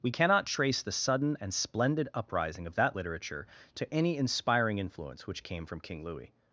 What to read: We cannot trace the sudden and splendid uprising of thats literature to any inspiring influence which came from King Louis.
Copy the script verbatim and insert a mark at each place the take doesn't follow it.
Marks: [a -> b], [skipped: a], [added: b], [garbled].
We cannot trace the sudden and splendid uprising of [thats -> that] literature to any inspiring influence which came from King Louis.